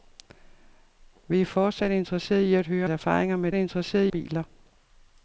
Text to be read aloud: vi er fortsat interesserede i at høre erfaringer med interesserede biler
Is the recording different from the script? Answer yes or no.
no